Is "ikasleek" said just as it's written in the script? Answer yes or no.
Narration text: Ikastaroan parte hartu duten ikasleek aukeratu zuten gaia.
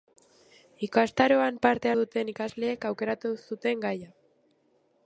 yes